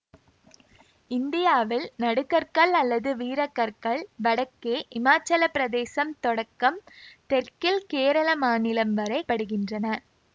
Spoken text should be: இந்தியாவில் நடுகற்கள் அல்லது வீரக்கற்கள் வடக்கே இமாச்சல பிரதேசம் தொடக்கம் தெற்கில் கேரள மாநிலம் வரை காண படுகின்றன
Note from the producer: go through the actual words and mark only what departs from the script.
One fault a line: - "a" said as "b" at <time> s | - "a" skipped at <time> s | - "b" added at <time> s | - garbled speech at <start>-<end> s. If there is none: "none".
- "காண" skipped at 9.2 s